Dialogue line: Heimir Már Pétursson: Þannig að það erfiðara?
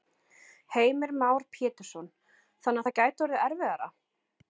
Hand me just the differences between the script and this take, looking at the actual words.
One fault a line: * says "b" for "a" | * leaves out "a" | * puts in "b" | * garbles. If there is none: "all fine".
* puts in "gæti orðið"